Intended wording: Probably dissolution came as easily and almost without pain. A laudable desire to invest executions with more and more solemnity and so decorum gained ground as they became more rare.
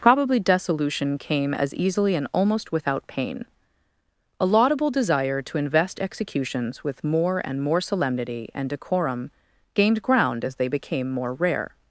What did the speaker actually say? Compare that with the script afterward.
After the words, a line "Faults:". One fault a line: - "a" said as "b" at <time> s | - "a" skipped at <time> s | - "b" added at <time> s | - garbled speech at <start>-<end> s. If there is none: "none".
Probably dissolution came as easily and almost without pain. A laudable desire to invest executions with more and more solemnity and decorum gained ground as they became more rare.
Faults:
- "so" skipped at 8.7 s